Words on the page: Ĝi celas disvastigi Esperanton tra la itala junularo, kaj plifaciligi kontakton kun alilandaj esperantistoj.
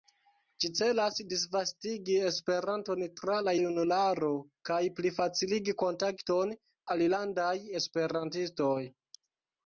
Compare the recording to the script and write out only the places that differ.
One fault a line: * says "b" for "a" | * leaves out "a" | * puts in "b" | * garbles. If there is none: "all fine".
* leaves out "itala"
* leaves out "kun"